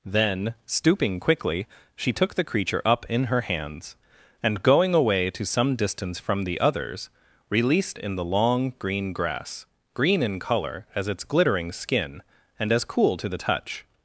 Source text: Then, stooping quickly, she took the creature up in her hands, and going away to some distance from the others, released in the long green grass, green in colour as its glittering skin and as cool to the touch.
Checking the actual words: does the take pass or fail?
pass